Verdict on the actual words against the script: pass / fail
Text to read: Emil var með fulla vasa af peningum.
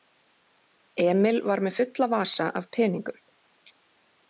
pass